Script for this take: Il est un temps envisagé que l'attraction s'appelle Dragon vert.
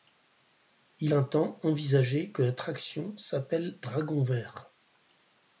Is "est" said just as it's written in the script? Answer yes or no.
no